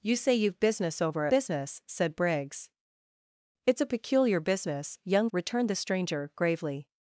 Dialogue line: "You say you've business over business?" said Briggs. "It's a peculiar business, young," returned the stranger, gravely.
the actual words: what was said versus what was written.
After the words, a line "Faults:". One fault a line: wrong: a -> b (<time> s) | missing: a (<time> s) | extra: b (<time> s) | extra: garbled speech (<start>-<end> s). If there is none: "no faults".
"You say you've business over business?" said Briggs. "It's a peculiar business, young," returned the stranger, gravely.
Faults:
no faults